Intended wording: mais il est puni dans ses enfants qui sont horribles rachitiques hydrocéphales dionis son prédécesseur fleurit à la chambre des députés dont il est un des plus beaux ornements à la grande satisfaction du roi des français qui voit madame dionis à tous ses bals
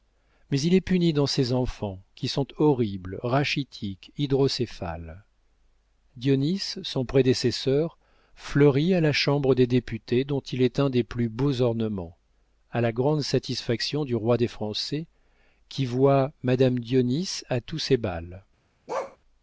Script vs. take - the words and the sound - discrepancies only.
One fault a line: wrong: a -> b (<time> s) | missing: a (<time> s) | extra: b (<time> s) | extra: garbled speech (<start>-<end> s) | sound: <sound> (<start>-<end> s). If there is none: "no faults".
sound: bark (18.9-19.2 s)